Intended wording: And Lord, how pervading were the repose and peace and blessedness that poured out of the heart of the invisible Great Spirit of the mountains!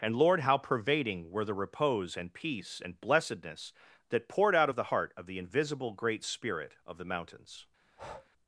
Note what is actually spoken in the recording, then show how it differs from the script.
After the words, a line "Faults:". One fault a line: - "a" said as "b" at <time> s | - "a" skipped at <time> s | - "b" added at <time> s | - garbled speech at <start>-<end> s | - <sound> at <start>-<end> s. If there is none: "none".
And Lord, how pervading were the repose and peace and blessedness that poured out of the heart of the invisible Great Spirit of the mountains!
Faults:
- breath at 7.8-8.3 s